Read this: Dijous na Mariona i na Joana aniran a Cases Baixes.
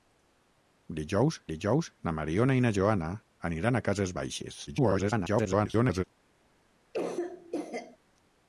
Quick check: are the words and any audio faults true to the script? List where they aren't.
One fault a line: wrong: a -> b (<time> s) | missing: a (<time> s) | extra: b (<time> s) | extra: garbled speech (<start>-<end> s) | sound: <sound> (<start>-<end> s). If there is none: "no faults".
extra: dijous (1.5 s)
extra: garbled speech (4.7-6.0 s)
sound: cough (6.9-8.0 s)